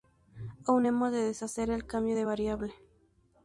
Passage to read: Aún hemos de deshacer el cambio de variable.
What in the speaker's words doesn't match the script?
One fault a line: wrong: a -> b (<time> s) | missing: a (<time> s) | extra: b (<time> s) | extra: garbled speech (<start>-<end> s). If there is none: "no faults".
no faults